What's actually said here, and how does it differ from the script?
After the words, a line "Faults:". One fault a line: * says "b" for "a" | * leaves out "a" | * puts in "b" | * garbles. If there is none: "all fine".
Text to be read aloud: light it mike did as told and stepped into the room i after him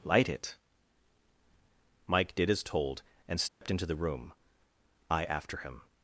light it mike did as told and stepped into the room i after him
Faults:
all fine